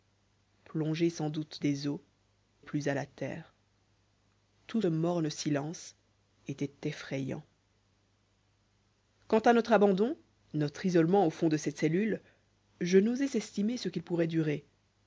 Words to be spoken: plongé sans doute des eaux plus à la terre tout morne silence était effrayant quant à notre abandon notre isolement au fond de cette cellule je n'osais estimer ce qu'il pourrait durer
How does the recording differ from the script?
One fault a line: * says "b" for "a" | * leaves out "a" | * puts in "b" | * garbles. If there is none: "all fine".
all fine